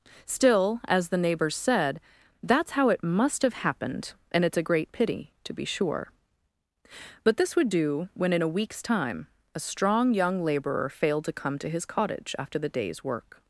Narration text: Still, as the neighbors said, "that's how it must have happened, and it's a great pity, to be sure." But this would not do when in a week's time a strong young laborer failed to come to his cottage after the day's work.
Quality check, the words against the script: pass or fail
fail